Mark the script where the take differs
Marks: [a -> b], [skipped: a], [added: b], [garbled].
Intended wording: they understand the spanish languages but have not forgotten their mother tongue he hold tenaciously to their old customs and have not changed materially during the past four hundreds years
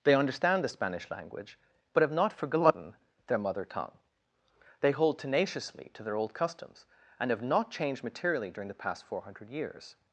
they understand the spanish [languages -> language] but have not forgotten their mother tongue [he -> they] hold tenaciously to their old customs and have not changed materially during the past four [hundreds -> hundred] years